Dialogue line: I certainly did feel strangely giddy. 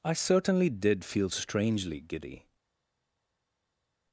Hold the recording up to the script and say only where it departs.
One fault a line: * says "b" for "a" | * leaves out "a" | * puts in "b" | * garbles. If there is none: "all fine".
all fine